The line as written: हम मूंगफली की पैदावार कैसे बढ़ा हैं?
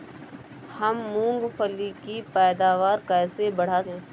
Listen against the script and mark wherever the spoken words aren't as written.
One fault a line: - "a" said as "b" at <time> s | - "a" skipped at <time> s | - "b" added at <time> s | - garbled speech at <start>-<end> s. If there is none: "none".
none